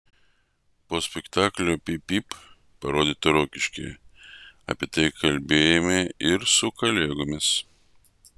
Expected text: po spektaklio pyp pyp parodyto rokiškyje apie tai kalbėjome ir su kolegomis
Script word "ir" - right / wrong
right